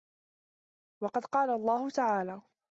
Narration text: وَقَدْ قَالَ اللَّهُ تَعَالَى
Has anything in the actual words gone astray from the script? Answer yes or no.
no